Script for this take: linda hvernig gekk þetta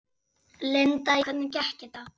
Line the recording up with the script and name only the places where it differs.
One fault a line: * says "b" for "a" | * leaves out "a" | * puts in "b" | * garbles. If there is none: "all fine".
all fine